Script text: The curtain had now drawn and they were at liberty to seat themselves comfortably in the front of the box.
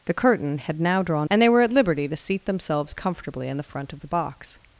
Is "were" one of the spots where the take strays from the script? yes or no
no